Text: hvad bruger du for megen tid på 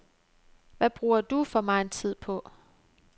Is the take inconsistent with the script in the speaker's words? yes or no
no